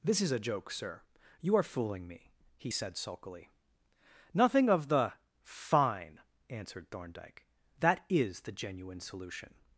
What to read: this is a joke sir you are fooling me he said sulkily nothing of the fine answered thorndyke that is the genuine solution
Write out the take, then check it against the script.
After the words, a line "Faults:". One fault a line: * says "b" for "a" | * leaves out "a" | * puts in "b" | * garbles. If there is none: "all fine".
this is a joke sir you are fooling me he said sulkily nothing of the fine answered thorndyke that is the genuine solution
Faults:
all fine